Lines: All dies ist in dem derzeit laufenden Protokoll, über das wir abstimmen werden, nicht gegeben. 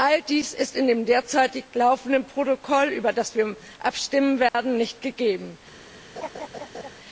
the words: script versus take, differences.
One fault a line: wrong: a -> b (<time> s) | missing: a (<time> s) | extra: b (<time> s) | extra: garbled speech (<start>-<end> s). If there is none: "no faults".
no faults